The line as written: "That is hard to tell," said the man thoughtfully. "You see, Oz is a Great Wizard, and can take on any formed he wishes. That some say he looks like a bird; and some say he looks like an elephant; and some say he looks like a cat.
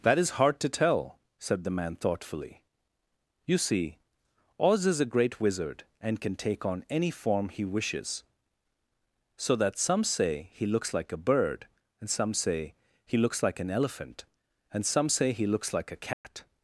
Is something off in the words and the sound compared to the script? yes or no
yes